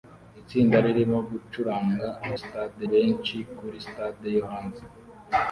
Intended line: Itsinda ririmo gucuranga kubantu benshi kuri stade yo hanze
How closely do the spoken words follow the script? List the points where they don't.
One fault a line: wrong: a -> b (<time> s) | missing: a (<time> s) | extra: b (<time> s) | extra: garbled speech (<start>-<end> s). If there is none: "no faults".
wrong: kubantu -> stade (2.4 s)